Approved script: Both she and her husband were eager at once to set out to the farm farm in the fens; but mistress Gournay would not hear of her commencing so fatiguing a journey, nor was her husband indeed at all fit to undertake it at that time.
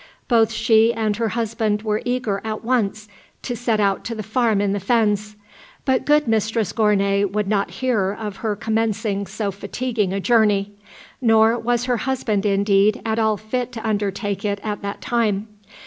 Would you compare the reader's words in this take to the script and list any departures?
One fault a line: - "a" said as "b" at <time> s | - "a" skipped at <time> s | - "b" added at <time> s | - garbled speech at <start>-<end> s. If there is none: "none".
- "farm" skipped at 4.6 s
- "good" added at 6.0 s